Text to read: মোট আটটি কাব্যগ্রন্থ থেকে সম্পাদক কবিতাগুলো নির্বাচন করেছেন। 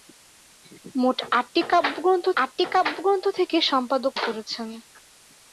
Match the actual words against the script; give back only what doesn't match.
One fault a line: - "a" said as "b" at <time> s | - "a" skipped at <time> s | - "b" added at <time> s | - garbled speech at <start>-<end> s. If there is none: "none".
- "আটটি কাব্যগ্রন্থ" added at 2.4 s
- "কবিতাগুলো নির্বাচন" skipped at 4.1 s